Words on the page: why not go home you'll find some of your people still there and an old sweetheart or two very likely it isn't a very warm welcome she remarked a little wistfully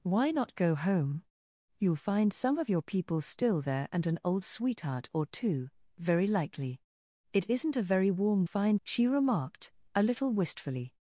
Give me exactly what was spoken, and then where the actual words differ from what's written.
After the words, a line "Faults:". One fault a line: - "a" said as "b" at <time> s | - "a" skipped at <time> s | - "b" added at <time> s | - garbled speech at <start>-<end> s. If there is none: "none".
why not go home you'll find some of your people still there and an old sweetheart or two very likely it isn't a very warm find she remarked a little wistfully
Faults:
- "welcome" said as "find" at 8.4 s